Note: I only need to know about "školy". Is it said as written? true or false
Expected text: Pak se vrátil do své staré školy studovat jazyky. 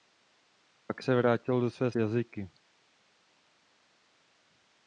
false